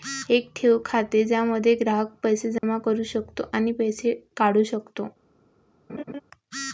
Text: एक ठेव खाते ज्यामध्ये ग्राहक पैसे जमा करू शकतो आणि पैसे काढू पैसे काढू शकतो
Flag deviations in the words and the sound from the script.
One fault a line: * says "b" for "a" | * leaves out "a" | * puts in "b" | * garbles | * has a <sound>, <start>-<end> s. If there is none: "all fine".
* has a dropout, 2.6-2.6 s
* leaves out "पैसे काढू"
* has a laugh, 5.9-6.2 s